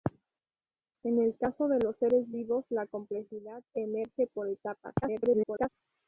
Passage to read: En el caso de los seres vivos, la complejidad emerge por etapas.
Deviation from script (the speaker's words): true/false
true